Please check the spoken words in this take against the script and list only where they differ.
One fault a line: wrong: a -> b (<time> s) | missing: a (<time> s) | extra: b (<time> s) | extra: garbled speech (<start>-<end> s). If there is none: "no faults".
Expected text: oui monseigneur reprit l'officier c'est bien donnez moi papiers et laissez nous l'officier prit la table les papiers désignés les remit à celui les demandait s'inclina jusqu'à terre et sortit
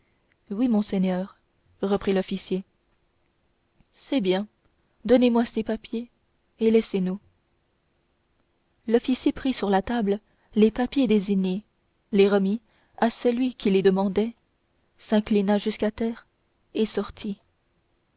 extra: ces (5.5 s)
extra: sur (9.5 s)
extra: qui (13.6 s)